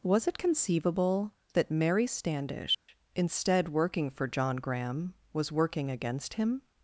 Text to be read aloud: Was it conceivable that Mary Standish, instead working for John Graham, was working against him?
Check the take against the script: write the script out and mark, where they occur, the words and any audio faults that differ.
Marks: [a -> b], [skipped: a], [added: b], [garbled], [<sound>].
Was it conceivable that Mary Standish, [dropout] instead working for John Graham, was working against him?